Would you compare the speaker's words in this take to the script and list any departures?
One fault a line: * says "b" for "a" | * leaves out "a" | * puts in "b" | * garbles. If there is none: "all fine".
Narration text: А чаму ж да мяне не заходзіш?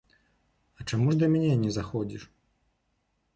all fine